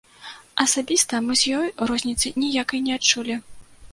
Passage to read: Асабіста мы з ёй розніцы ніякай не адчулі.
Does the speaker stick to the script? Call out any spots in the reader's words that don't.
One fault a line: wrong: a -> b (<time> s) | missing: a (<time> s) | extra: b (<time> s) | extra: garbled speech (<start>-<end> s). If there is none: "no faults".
no faults